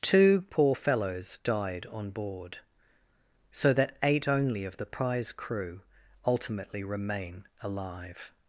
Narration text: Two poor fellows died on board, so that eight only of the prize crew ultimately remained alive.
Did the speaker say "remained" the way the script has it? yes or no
no